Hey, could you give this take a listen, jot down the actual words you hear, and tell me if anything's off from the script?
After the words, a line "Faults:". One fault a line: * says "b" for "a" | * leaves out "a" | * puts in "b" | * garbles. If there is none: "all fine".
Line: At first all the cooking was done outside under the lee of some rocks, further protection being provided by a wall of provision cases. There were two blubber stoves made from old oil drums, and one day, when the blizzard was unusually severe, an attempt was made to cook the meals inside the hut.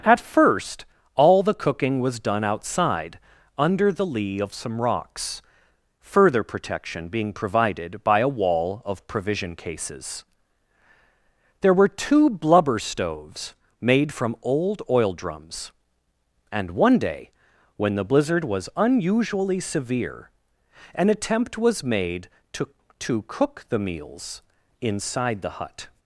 At first all the cooking was done outside under the lee of some rocks, further protection being provided by a wall of provision cases. There were two blubber stoves made from old oil drums, and one day, when the blizzard was unusually severe, an attempt was made to to cook the meals inside the hut.
Faults:
* puts in "to"